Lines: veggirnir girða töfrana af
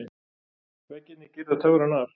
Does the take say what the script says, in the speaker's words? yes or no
yes